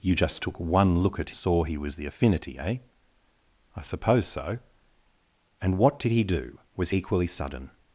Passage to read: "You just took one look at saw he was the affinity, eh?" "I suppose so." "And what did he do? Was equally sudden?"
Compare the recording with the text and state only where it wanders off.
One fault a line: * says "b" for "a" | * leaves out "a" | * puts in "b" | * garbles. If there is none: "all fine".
all fine